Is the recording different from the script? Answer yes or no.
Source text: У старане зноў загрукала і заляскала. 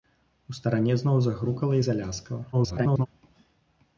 yes